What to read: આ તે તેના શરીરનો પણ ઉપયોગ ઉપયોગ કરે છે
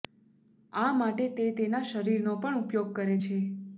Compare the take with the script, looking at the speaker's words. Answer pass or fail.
fail